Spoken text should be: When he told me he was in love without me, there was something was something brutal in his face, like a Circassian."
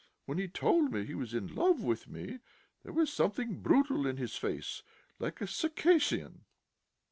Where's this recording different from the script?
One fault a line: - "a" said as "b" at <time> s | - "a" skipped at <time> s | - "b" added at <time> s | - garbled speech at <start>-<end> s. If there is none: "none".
- "without" said as "with" at 1.8 s
- "was something" skipped at 3.6 s